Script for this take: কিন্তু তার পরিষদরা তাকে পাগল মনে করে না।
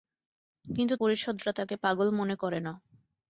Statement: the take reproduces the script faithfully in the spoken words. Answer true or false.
false